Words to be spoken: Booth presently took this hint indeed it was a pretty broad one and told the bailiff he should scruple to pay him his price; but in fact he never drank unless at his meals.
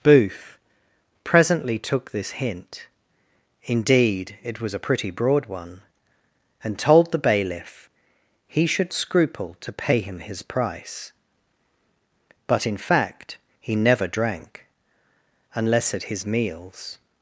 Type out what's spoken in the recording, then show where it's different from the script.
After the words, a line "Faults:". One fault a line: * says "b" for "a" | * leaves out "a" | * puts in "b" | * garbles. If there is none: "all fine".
Booth presently took this hint indeed it was a pretty broad one and told the bailiff he should scruple to pay him his price; but in fact he never drank unless at his meals.
Faults:
all fine